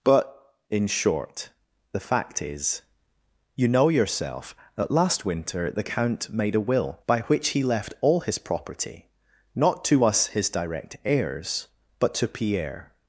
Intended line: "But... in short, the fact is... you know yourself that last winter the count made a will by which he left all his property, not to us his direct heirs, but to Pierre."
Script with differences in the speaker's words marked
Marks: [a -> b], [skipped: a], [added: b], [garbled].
"But... in short, the fact is... you know yourself that last winter the count made a will by which he left all his property, not to us his direct heirs, but to Pierre."